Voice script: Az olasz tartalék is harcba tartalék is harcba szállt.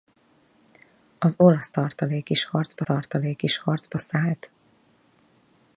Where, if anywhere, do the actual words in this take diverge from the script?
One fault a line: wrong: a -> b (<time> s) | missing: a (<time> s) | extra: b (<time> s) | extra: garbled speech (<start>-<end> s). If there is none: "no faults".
no faults